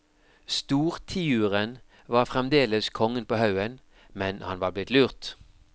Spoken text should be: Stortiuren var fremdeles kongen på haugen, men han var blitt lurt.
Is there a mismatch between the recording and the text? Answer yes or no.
no